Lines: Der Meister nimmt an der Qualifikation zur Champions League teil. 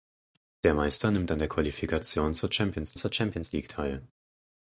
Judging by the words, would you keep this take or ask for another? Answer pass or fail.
fail